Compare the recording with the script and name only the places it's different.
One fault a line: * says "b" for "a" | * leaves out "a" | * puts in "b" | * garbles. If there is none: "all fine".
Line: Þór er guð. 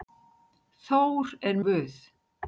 all fine